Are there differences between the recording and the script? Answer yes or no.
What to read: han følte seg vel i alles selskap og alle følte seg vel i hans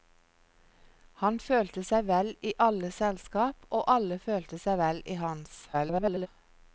yes